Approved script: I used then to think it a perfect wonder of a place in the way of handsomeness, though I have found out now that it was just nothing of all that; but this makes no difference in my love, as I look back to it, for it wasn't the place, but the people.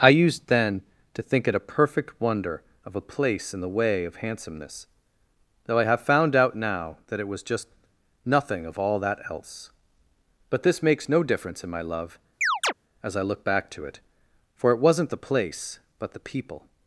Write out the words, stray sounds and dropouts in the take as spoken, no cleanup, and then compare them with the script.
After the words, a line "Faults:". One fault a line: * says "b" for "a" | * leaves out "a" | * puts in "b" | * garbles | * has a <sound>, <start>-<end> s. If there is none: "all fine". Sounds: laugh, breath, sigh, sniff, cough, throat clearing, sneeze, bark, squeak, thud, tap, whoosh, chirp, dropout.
I used then to think it a perfect wonder of a place in the way of handsomeness, though I have found out now that it was just nothing of all that; else but this makes no difference in my love, as I look back to it, for it wasn't the place, but the people.
Faults:
* puts in "else"
* has a chirp, 12.4-12.7 s